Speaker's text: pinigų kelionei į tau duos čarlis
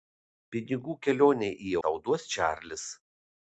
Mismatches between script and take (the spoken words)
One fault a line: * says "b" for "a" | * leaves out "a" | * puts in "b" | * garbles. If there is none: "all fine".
all fine